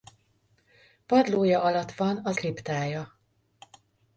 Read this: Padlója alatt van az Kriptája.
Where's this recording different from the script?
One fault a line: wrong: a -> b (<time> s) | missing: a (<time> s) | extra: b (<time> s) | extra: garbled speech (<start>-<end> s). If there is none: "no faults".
no faults